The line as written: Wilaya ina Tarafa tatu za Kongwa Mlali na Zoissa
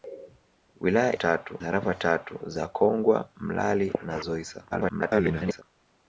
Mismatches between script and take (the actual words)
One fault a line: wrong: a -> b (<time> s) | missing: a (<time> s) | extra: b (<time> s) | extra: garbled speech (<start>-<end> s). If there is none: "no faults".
wrong: ina -> tatu (1.1 s)
extra: garbled speech (4.7-5.6 s)